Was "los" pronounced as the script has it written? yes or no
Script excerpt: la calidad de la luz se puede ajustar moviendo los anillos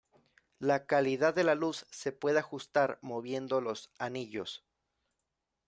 yes